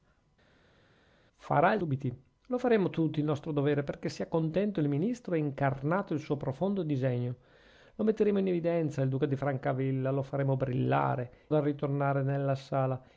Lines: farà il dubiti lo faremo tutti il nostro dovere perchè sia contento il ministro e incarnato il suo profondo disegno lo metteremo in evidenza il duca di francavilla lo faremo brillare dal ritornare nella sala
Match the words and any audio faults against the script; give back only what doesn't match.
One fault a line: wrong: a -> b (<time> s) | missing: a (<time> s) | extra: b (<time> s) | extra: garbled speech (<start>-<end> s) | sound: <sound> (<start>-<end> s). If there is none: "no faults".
no faults